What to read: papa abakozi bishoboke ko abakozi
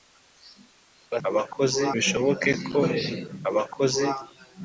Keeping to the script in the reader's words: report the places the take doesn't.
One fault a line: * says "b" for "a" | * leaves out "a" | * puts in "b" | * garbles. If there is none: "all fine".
all fine